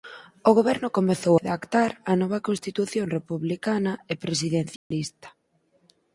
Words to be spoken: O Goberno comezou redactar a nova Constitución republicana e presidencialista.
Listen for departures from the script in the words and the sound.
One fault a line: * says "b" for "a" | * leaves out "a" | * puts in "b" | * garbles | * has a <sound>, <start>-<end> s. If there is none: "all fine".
* has a dropout, 4.8-4.9 s